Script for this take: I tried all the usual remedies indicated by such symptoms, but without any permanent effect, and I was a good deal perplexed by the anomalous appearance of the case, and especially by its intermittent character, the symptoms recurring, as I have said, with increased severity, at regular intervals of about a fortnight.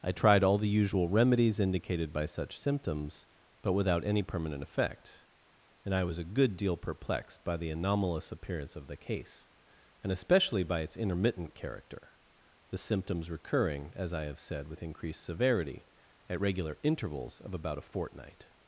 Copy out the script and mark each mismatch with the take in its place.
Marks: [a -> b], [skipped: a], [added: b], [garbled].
I tried all the usual remedies indicated by such symptoms, but without any permanent effect, and I was a good deal perplexed by the anomalous appearance of the case, and especially by its intermittent character, the symptoms recurring, as I have said, with increased severity, at regular intervals of about a fortnight.